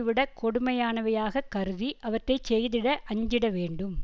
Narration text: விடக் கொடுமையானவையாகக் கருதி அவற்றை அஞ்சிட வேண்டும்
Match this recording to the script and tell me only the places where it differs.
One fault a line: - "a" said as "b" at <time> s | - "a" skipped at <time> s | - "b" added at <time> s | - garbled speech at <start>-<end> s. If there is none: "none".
- "செய்திட" added at 2.5 s